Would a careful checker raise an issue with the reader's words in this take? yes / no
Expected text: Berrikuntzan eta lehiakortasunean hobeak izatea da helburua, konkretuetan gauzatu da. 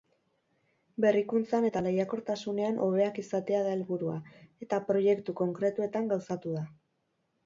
yes